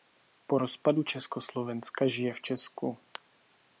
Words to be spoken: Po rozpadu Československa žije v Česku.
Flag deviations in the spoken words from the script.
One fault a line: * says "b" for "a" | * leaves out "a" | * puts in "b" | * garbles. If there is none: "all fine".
all fine